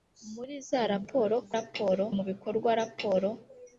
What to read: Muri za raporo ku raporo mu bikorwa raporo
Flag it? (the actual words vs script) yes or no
no